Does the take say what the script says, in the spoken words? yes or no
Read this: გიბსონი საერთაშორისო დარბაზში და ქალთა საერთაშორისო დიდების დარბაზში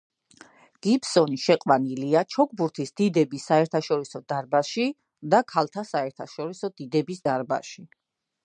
no